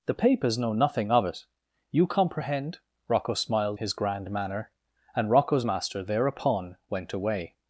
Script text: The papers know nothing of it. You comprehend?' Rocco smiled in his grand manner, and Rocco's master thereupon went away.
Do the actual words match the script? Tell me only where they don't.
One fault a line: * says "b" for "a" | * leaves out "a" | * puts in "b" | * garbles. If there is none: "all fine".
* leaves out "in"